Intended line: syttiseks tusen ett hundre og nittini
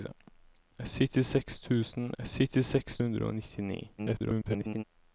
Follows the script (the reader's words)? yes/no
no